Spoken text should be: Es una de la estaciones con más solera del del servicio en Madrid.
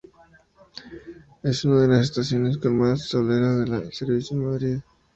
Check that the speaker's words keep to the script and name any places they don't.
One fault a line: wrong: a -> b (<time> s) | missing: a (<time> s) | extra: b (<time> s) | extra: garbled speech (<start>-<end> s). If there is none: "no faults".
wrong: la -> las (1.9 s)
missing: del (3.9 s)